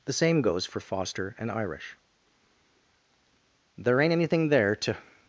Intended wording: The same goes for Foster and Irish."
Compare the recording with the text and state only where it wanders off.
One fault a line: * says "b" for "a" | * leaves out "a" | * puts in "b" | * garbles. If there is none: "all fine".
* puts in "There ain't anything there to"